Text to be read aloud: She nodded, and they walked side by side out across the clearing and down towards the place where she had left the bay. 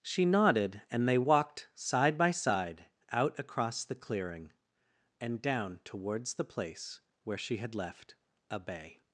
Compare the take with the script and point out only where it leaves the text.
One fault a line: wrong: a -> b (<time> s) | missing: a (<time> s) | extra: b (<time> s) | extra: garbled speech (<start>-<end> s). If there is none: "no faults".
wrong: the -> a (8.5 s)